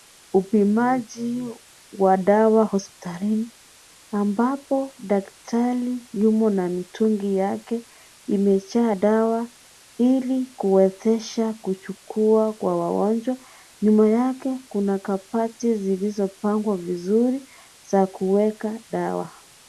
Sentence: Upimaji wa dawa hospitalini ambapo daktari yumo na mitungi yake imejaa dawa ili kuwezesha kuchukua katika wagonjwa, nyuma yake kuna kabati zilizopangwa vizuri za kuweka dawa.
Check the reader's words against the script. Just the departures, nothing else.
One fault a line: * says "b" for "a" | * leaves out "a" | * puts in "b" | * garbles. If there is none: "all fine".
* says "kwa" for "katika"